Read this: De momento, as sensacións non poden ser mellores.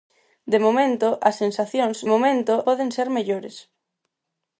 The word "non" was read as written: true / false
false